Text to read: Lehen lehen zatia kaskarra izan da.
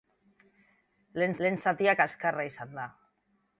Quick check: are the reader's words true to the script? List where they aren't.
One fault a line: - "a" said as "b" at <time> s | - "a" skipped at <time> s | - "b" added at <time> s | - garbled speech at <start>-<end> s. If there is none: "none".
none